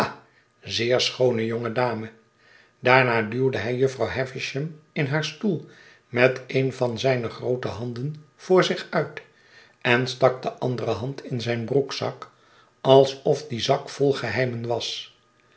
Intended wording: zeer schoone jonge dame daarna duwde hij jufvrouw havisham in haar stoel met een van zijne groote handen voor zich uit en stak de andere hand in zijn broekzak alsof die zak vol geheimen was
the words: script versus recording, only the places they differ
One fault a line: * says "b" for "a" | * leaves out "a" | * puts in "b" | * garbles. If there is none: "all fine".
all fine